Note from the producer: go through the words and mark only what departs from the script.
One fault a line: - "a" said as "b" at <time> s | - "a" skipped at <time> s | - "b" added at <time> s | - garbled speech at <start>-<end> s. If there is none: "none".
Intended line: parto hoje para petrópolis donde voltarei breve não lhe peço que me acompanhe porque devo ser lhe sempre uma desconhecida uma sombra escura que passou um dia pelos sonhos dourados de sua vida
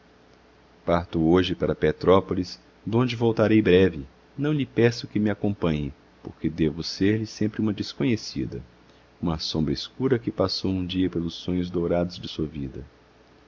none